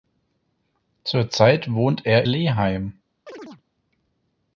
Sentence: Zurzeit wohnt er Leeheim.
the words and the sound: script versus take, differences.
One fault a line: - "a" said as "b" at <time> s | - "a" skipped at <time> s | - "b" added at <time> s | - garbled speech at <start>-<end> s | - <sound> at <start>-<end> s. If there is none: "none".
- chirp at 3.3-3.6 s